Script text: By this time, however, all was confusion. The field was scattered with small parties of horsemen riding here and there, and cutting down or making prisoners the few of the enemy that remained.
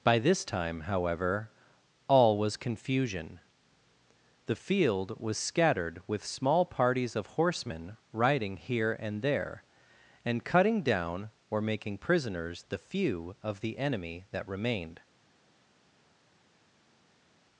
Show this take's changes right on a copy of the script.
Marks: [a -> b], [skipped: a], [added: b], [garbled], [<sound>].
By this time, however, all was confusion. The field was scattered with small parties of horsemen riding here and there, and cutting down or making prisoners the few of the enemy that remained.